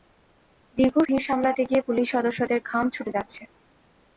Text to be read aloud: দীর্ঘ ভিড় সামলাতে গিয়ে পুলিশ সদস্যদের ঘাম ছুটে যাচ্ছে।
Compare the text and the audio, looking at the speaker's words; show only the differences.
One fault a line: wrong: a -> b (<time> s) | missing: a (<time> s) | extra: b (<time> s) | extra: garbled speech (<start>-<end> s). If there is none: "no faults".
no faults